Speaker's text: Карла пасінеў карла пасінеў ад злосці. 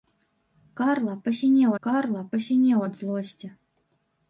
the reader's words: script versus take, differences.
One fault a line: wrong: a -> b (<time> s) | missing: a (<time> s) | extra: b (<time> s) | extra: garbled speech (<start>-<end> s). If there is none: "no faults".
no faults